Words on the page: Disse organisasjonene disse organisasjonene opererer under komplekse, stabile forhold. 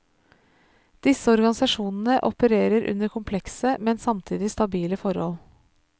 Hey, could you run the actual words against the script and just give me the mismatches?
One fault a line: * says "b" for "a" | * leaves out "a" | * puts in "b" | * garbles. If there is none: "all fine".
* leaves out "disse organisasjonene"
* puts in "men samtidig"